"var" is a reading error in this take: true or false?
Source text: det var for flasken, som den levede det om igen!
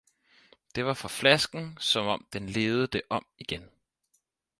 false